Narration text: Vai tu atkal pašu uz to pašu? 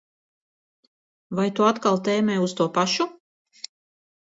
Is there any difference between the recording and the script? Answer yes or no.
yes